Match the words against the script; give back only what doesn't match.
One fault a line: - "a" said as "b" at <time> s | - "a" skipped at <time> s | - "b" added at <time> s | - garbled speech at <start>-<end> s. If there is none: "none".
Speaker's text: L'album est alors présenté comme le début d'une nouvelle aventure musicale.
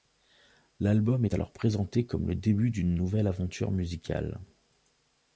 none